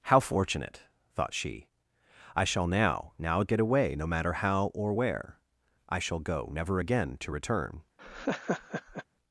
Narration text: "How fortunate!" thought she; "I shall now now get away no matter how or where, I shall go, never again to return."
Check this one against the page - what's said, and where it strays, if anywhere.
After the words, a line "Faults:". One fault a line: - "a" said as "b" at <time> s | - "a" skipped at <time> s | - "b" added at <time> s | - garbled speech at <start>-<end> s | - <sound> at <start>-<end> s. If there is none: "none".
"How fortunate!" thought she; "I shall now now get away no matter how or where, I shall go, never again to return."
Faults:
- laugh at 8.0-9.0 s